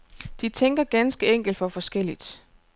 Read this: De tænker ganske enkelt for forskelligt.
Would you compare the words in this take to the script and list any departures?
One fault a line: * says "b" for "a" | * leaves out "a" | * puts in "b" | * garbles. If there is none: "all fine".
all fine